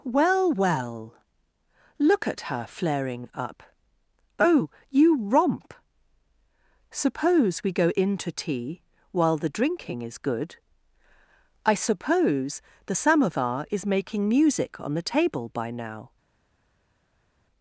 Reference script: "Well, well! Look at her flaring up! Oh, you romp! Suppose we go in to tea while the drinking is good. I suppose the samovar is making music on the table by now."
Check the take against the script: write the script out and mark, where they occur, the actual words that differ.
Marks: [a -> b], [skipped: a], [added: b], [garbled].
"Well, well! Look at her flaring up! Oh, you romp! Suppose we go in to tea while the drinking is good. I suppose the samovar is making music on the table by now."